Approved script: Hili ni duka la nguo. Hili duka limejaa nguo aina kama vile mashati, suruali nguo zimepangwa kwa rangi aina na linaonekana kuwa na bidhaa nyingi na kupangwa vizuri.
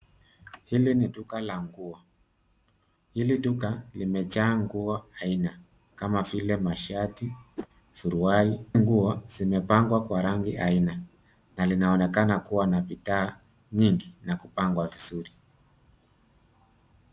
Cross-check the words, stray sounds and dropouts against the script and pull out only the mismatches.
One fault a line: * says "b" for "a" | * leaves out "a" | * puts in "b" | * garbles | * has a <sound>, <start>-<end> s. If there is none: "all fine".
* has a whoosh, 7.6-7.7 s